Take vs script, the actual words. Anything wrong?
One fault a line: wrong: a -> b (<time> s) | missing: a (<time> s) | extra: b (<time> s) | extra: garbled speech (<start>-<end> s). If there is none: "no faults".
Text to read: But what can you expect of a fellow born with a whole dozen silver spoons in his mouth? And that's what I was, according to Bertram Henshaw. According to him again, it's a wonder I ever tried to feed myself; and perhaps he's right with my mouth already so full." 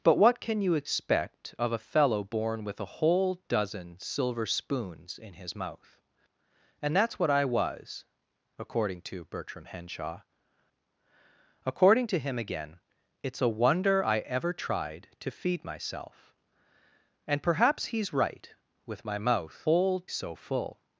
wrong: already -> whole (19.6 s)